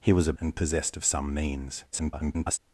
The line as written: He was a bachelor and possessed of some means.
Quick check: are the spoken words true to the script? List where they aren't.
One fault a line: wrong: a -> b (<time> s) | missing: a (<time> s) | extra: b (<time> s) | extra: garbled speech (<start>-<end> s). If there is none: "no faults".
missing: bachelor (0.3 s)
extra: garbled speech (1.9-2.6 s)